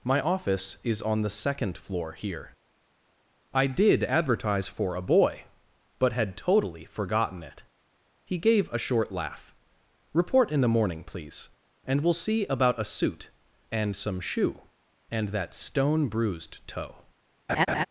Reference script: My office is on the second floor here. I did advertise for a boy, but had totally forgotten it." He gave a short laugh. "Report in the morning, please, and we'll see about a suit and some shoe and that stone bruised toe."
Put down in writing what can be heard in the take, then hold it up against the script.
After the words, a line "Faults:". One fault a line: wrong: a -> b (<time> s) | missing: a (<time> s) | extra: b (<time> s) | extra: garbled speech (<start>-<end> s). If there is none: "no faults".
My office is on the second floor here. I did advertise for a boy, but had totally forgotten it." He gave a short laugh. "Report in the morning, please, and we'll see about a suit and some shoe and that stone bruised toe."
Faults:
no faults